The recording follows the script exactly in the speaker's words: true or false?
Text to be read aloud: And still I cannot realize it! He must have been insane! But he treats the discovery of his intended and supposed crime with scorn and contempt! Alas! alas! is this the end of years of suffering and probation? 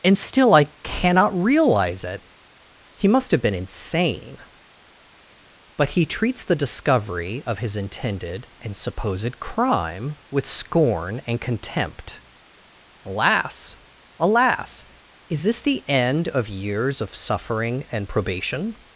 true